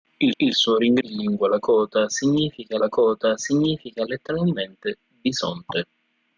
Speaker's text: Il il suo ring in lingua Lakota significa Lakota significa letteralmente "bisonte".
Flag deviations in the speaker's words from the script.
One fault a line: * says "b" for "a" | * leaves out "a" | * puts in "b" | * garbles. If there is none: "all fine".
all fine